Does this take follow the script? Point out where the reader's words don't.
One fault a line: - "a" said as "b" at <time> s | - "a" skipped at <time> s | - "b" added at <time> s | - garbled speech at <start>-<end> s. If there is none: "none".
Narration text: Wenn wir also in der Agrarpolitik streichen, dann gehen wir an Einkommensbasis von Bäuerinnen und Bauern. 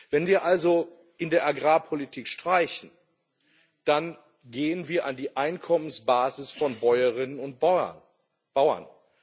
- "die" added at 5.2 s